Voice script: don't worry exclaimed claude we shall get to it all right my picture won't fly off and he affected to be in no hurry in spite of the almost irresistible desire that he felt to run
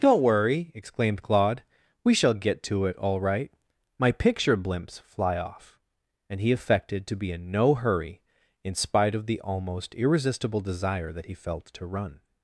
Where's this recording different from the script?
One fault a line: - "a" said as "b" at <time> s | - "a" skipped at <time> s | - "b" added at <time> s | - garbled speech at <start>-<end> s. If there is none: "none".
- "won't" said as "blimps" at 4.6 s